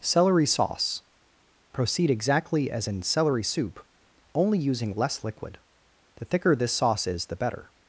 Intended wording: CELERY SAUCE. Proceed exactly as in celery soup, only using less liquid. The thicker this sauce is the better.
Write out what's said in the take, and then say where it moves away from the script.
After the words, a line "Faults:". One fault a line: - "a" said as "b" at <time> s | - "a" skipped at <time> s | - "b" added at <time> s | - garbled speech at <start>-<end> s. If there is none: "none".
CELERY SAUCE. Proceed exactly as in celery soup, only using less liquid. The thicker this sauce is the better.
Faults:
none